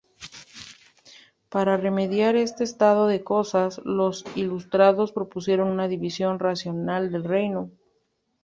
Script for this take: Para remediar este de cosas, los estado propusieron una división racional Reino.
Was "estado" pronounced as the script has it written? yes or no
no